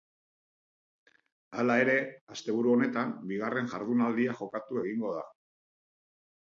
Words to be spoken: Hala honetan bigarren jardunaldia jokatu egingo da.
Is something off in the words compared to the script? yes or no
yes